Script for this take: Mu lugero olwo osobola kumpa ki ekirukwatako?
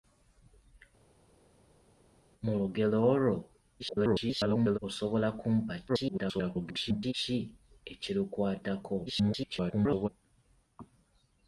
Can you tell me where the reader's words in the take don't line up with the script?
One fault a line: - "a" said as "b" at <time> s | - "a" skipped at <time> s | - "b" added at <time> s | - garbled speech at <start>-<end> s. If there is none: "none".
- garbled speech at 3.8-4.8 s
- garbled speech at 5.9-7.1 s
- garbled speech at 9.1-10.1 s